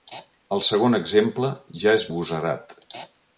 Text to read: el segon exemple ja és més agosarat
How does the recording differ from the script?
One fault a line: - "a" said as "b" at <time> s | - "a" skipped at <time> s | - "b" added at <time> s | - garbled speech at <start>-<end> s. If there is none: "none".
- "més" skipped at 2.1 s